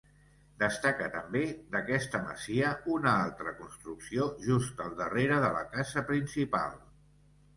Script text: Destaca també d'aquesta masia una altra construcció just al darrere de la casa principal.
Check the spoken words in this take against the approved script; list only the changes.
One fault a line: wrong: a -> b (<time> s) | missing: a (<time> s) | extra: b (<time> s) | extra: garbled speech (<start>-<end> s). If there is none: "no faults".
no faults